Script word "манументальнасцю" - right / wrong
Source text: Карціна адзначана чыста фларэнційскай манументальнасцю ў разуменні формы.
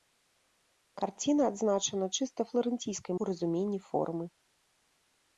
wrong